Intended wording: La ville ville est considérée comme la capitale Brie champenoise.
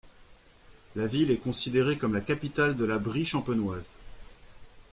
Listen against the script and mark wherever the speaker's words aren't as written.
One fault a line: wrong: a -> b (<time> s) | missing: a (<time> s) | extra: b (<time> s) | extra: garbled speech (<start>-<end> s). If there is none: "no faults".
missing: ville (1.3 s)
extra: de la (2.8 s)